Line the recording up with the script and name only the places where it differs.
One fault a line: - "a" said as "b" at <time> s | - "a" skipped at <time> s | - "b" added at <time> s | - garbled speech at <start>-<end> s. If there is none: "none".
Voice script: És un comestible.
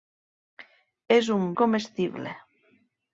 none